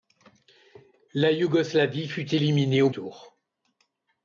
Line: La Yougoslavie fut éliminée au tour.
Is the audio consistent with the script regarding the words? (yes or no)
yes